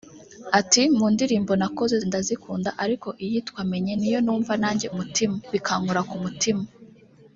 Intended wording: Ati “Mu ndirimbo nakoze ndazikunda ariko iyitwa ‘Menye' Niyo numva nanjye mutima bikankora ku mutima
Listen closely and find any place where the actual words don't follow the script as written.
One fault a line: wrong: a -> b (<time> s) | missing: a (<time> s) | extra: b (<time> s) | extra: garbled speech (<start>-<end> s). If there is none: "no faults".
no faults